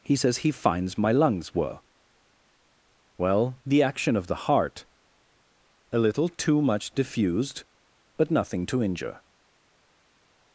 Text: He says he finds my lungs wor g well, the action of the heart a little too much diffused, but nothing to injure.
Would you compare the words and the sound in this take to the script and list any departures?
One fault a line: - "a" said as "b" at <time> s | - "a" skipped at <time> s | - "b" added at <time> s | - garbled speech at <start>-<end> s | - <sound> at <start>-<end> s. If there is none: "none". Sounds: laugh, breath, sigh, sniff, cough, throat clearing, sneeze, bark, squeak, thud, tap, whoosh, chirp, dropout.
- "wor g" said as "were" at 1.5 s